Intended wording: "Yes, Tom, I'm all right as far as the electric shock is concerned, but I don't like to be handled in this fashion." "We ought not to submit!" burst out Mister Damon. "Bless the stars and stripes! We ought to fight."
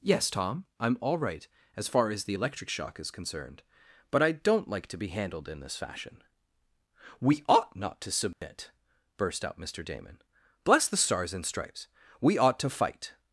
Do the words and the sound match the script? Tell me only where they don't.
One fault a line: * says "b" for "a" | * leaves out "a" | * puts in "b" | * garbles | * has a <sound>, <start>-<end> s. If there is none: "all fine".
* has a dropout, 8.3-8.4 s